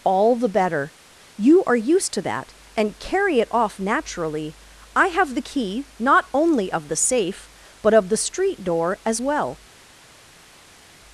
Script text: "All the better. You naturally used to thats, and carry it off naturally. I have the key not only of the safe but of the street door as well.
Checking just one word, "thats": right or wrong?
wrong